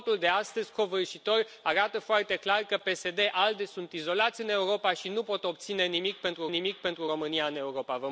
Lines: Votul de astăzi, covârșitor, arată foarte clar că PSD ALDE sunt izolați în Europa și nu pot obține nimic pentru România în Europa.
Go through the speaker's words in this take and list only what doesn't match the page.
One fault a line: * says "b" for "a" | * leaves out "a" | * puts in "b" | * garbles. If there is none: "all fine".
* puts in "nimic pentru"